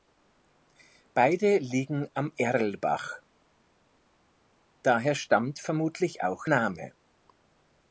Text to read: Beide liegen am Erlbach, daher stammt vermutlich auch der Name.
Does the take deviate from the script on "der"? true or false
true